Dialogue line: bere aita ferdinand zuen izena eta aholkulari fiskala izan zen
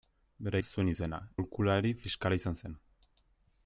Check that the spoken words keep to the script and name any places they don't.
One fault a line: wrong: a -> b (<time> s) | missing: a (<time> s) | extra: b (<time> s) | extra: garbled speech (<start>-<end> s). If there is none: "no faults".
missing: aita ferdinand (0.6 s)
missing: eta (1.2 s)